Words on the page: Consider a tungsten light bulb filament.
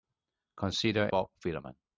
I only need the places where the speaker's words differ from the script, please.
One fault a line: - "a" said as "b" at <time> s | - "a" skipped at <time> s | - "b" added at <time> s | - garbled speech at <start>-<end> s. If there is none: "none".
- "a tungsten light" skipped at 1.1 s